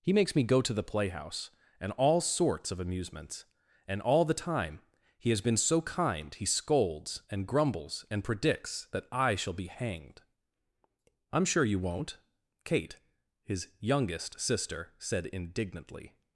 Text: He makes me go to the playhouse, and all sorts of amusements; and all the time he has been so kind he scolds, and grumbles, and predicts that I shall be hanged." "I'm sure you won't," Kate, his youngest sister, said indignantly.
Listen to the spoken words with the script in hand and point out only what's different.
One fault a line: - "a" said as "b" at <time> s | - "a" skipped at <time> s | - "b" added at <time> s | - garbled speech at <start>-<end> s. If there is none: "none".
none